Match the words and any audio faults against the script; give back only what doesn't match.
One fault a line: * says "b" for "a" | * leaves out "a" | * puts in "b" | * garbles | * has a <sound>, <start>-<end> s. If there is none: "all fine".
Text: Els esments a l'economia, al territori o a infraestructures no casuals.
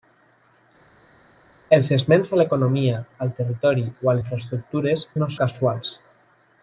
all fine